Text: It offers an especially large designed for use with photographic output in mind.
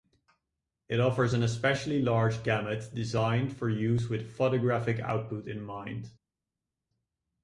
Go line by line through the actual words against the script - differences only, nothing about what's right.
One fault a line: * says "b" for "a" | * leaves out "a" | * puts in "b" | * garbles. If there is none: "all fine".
* puts in "gamut"